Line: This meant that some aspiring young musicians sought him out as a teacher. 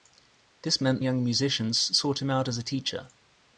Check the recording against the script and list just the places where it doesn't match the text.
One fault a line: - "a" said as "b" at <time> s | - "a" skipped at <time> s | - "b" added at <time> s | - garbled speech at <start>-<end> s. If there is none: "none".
- "that some aspiring" skipped at 1.0 s